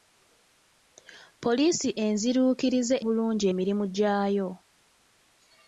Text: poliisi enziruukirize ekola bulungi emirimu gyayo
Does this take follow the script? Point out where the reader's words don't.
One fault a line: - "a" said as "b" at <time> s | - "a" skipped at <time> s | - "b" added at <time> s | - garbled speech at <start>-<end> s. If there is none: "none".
- "ekola" skipped at 3.0 s